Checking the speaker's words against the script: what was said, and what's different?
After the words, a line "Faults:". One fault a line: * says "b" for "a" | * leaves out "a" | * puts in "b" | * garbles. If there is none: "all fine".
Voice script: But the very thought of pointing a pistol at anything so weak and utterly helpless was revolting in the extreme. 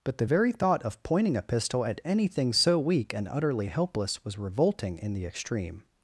But the very thought of pointing a pistol at anything so weak and utterly helpless was revolting in the extreme.
Faults:
all fine